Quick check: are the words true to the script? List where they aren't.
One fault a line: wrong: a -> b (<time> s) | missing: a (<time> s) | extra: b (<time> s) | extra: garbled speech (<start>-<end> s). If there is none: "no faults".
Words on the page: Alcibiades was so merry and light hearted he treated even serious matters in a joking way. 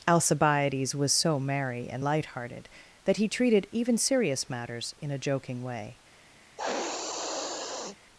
extra: that (3.0 s)